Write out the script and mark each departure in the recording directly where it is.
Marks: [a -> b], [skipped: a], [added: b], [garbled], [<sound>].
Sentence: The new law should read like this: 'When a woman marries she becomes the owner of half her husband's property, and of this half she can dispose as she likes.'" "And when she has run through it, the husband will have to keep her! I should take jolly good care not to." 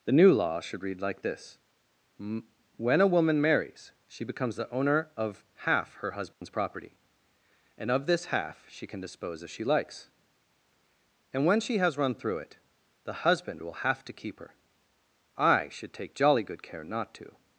The new law should read like this: 'When a woman marries she becomes the owner of half her husband's [dropout] property, and of this half she can dispose as she likes.'" "And when she has run through it, the husband will have to keep her! I should take jolly good care not to."